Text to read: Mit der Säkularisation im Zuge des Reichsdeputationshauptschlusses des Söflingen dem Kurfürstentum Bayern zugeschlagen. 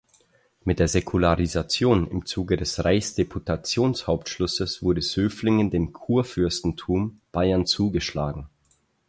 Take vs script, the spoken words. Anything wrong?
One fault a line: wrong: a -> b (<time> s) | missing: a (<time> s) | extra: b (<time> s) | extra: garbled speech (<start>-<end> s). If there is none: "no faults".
wrong: des -> wurde (4.8 s)